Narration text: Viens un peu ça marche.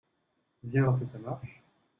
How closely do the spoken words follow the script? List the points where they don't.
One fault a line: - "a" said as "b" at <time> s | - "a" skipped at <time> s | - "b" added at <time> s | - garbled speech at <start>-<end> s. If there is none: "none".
none